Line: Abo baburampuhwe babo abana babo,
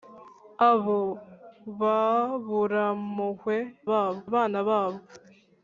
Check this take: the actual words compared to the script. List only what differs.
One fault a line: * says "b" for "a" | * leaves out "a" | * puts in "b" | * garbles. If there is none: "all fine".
all fine